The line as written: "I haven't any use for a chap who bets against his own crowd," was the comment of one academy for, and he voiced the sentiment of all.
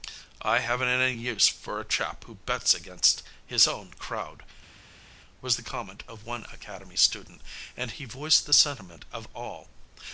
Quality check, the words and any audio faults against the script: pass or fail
fail